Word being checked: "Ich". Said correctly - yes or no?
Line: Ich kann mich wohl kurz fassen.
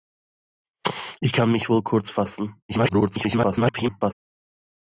yes